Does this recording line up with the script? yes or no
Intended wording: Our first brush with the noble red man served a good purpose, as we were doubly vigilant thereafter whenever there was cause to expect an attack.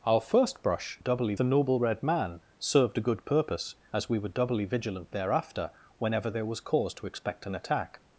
no